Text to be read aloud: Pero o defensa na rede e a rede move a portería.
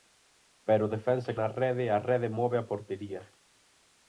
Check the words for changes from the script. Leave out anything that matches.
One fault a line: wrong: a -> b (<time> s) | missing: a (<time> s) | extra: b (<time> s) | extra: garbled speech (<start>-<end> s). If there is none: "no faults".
no faults